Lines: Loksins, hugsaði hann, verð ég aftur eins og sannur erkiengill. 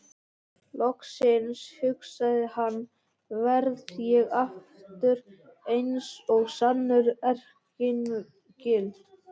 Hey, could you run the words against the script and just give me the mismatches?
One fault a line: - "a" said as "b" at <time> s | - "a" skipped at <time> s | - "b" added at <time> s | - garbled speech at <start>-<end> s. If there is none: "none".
none